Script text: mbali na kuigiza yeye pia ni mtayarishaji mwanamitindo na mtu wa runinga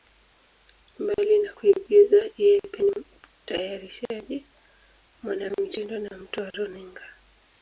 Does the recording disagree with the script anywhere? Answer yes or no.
no